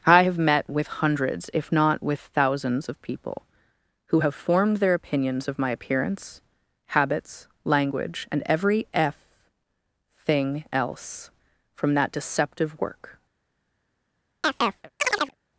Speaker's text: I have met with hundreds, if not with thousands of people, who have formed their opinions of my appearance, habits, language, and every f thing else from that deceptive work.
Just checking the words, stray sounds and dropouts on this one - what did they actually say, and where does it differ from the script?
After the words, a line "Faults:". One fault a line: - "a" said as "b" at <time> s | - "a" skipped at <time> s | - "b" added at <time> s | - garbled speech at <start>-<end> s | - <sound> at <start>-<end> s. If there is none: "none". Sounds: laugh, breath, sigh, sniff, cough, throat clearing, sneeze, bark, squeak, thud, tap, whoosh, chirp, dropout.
I have met with hundreds, if not with thousands of people, who have formed their opinions of my appearance, habits, language, and every f thing else from that deceptive work.
Faults:
- chirp at 14.4-15.3 s